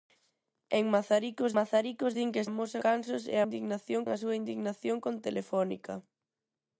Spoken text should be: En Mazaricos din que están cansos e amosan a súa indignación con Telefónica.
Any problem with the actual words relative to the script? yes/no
yes